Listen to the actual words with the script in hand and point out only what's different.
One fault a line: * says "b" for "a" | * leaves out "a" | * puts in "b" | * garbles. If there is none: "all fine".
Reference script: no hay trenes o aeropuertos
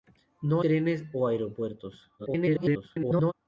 * leaves out "hay"
* garbles